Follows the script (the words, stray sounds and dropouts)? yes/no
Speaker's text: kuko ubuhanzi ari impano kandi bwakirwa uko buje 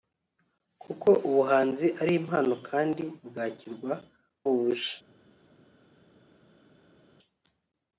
no